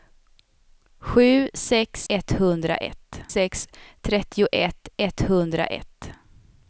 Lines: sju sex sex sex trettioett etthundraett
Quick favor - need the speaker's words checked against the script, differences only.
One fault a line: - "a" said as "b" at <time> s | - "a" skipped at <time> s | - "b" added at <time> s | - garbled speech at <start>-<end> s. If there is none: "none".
- "sex" said as "etthundraett" at 2.1 s